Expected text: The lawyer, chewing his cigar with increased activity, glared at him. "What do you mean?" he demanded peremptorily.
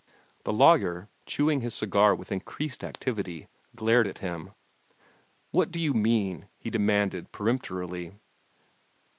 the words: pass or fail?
pass